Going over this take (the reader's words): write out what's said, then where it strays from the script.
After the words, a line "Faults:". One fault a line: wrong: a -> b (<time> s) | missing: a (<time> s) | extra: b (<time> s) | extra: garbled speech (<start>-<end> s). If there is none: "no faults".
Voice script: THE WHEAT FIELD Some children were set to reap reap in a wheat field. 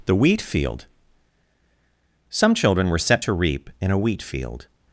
THE WHEAT FIELD Some children were set to reap in a wheat field.
Faults:
missing: reap (3.7 s)